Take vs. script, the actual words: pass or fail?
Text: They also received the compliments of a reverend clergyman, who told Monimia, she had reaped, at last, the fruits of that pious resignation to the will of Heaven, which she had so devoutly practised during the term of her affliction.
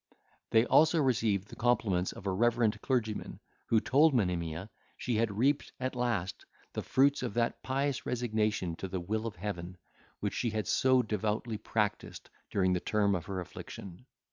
pass